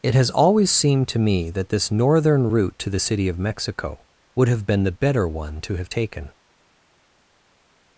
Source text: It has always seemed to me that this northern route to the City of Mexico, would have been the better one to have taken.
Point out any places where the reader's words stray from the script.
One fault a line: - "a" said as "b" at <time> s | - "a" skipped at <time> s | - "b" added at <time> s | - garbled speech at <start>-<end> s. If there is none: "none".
none